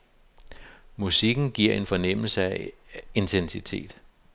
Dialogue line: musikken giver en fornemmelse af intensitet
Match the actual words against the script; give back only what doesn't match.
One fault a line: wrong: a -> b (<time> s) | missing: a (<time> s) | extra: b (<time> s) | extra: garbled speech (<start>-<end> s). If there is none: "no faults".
no faults